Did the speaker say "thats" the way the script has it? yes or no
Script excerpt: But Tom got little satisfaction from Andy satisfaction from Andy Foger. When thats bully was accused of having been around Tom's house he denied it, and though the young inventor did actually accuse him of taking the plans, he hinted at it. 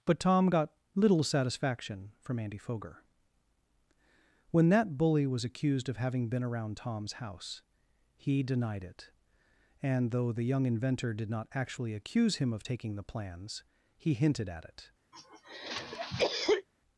no